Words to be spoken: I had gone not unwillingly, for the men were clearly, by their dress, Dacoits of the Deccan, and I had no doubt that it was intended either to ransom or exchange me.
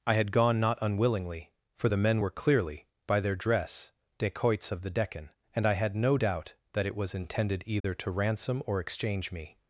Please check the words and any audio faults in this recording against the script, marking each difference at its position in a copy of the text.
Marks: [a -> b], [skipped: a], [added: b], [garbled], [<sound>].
I had gone not unwillingly, for the men were clearly, by their dress, Dacoits of the Deccan, and I had no doubt that it was intended either [dropout] to ransom or exchange me.